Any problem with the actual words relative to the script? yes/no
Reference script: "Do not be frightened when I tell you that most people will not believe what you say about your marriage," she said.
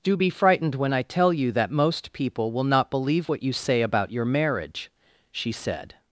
yes